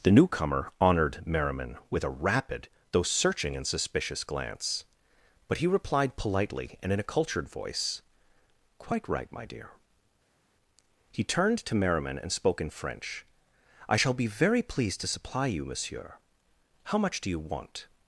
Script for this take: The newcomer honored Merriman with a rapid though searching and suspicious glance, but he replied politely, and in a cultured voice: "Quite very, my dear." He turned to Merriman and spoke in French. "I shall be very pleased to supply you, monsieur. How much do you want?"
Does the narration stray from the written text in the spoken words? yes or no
yes